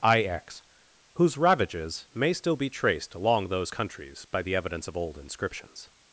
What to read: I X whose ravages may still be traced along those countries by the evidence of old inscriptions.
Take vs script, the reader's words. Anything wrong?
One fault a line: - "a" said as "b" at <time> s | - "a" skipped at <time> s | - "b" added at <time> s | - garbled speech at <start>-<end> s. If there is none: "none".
none